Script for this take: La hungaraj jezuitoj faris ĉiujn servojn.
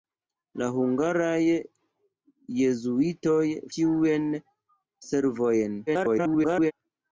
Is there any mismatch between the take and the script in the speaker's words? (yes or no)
yes